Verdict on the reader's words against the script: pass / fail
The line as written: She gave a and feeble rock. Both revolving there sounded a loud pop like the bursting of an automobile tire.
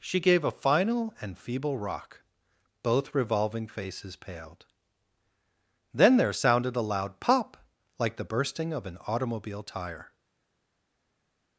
fail